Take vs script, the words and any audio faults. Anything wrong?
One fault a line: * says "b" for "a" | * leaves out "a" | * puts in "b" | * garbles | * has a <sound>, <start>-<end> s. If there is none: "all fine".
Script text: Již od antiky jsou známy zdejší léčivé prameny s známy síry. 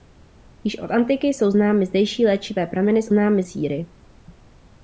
all fine